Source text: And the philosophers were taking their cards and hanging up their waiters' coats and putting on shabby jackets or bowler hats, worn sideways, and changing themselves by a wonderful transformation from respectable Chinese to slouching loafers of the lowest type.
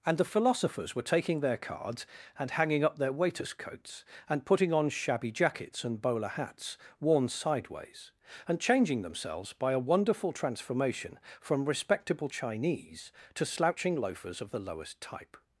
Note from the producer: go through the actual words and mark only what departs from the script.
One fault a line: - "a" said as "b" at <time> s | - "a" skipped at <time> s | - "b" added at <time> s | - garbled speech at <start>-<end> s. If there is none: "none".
- "or" said as "and" at 5.8 s